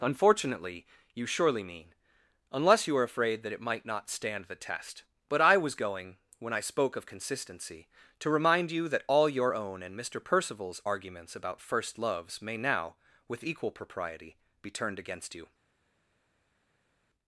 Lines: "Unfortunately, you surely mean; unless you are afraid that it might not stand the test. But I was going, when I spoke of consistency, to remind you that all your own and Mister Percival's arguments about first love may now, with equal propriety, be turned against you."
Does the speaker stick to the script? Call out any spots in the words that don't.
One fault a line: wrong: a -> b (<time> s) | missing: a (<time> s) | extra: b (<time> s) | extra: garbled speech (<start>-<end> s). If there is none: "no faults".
wrong: love -> loves (12.0 s)